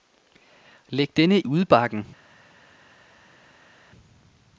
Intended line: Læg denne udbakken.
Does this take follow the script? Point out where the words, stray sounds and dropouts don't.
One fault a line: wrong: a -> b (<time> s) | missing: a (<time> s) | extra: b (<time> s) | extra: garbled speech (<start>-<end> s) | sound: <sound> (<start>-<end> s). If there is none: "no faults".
no faults